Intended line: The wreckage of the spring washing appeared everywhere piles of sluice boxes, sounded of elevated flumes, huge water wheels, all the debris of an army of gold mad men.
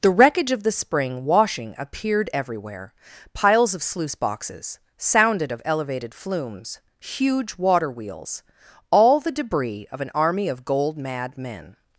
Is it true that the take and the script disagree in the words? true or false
false